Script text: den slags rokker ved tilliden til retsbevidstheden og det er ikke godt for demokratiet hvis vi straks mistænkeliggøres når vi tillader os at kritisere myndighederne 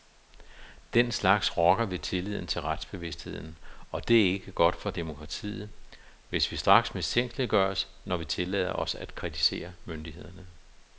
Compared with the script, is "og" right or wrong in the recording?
right